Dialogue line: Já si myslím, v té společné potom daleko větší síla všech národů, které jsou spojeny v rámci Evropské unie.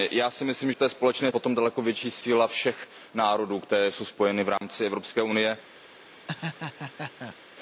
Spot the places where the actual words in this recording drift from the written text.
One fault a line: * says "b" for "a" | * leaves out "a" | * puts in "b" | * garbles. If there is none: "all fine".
all fine